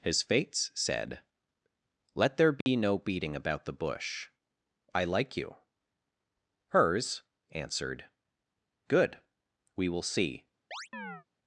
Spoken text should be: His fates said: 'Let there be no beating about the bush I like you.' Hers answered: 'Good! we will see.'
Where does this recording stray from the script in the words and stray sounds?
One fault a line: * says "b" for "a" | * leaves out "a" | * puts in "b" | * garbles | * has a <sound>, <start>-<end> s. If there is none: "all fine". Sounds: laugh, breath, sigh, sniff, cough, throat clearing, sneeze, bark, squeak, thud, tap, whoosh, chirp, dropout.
* has a dropout, 2.6-2.7 s
* has a chirp, 10.7-11.2 s